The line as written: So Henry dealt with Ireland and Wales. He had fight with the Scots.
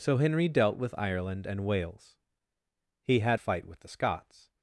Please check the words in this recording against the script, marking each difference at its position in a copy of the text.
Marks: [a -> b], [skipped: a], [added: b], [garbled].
So Henry dealt with Ireland and Wales. He had fight with the Scots.